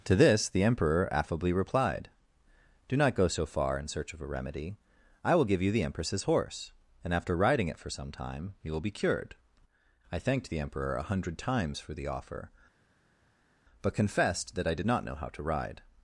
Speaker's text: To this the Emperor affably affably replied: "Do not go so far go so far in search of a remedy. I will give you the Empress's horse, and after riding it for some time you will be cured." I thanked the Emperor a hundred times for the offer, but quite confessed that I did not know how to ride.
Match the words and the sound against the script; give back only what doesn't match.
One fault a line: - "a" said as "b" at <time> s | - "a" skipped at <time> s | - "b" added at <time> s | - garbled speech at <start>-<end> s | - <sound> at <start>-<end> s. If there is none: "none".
- "affably" skipped at 1.5 s
- "go so far" skipped at 3.8 s
- "quite" skipped at 13.9 s